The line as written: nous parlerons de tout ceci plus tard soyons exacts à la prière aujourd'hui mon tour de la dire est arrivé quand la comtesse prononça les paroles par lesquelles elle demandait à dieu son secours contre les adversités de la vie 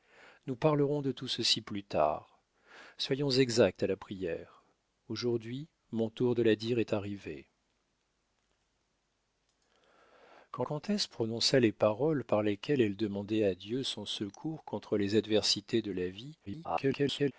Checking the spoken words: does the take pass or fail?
fail